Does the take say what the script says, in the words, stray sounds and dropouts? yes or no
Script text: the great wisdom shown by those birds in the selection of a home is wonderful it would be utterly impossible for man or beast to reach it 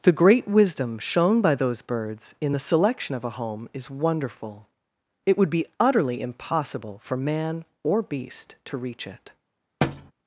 no